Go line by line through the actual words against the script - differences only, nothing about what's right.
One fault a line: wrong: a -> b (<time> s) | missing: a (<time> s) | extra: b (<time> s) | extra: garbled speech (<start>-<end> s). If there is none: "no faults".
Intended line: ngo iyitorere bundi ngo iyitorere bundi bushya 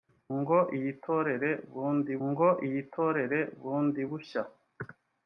no faults